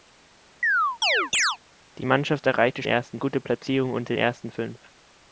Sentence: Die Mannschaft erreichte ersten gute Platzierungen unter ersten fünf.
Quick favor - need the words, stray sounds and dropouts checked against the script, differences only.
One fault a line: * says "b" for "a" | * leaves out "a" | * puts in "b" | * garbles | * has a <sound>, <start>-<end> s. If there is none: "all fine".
* has a chirp, 0.6-1.6 s